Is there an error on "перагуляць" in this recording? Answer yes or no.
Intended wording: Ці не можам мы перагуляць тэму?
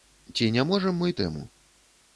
yes